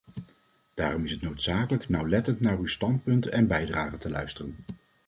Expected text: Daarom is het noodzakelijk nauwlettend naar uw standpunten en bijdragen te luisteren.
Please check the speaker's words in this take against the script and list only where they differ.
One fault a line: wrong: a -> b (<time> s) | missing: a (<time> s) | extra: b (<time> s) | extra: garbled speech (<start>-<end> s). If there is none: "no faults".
no faults